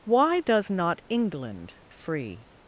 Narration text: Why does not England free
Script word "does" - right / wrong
right